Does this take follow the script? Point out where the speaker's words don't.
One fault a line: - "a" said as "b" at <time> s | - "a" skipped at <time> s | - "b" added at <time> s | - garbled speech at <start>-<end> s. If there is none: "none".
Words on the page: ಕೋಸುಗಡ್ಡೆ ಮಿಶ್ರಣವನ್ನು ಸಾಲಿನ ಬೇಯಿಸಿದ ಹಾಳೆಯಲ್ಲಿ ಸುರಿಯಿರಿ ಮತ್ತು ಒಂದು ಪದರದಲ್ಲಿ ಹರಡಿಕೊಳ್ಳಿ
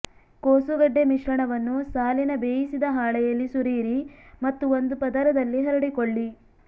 none